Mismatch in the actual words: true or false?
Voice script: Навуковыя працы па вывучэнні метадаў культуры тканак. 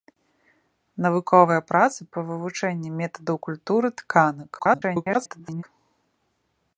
true